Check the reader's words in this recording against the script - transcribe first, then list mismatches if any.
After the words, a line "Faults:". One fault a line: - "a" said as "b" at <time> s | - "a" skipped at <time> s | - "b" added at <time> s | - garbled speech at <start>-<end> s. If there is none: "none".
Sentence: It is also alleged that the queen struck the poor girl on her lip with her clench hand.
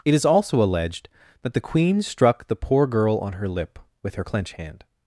It is also alleged that the queen struck the poor girl on her lip with her clench hand.
Faults:
none